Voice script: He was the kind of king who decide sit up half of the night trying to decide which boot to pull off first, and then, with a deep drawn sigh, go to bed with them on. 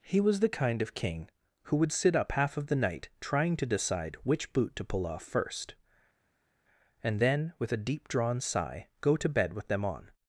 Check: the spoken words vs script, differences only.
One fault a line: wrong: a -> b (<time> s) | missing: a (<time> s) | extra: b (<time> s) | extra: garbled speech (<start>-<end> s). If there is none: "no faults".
wrong: decide -> would (1.8 s)